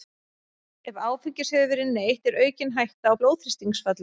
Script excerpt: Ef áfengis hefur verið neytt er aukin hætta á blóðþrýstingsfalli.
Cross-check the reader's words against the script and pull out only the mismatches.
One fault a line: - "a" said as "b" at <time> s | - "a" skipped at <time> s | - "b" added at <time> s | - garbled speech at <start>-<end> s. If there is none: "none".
none